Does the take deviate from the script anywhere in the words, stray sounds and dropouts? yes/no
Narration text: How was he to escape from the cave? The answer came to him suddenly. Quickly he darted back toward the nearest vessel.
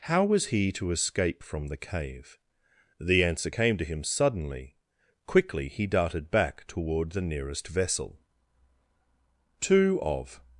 yes